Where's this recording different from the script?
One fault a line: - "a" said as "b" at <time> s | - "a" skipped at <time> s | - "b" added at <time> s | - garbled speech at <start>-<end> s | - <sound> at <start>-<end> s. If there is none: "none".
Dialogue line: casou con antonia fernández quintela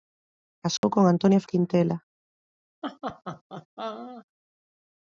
- dropout at 0.8-0.8 s
- "fernández" skipped at 1.4 s
- laugh at 2.8-4.3 s